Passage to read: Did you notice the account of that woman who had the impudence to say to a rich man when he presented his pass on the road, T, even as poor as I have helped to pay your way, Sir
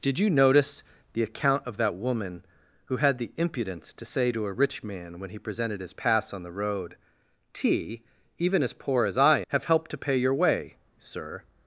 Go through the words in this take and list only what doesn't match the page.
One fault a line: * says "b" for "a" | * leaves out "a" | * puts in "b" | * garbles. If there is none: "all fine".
all fine